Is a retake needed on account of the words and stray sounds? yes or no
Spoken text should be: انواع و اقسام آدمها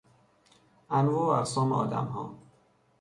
no